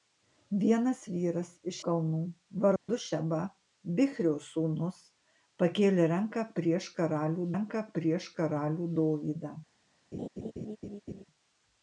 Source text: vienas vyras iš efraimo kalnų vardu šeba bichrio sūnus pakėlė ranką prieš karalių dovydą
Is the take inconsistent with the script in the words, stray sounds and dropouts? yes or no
yes